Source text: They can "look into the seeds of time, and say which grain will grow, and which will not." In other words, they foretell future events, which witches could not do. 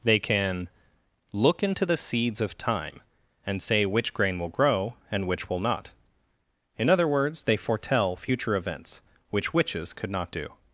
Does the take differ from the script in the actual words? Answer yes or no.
no